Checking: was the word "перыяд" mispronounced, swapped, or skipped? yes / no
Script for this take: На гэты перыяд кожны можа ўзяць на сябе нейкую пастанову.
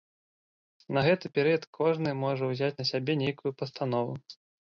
no